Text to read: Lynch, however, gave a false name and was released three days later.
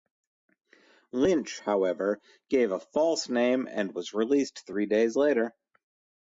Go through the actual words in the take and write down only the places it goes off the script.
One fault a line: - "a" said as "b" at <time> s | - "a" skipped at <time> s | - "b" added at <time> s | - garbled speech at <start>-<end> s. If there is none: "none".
none